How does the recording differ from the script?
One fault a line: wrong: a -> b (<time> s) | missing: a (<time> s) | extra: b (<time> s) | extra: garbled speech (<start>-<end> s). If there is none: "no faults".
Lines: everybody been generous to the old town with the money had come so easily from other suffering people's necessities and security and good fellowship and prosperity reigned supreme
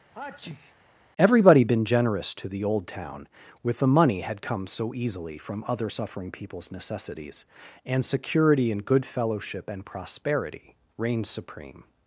no faults